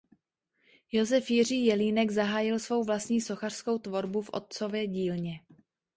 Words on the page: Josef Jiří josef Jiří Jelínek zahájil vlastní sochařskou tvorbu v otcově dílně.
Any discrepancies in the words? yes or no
yes